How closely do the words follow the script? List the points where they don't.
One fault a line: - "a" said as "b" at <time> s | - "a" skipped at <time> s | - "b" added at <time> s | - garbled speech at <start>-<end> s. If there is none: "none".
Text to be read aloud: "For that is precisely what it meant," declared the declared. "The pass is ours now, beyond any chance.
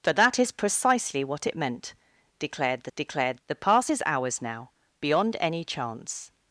none